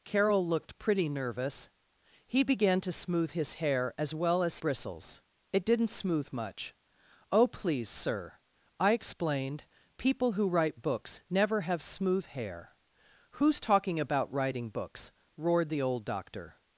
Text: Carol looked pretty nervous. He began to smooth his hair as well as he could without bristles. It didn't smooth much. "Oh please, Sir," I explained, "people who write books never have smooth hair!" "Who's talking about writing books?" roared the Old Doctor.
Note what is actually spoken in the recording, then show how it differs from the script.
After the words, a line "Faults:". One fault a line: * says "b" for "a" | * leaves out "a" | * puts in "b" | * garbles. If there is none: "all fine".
Carol looked pretty nervous. He began to smooth his hair as well as bristles. It didn't smooth much. "Oh please, Sir," I explained, "people who write books never have smooth hair!" "Who's talking about writing books?" roared the Old Doctor.
Faults:
* leaves out "he could without"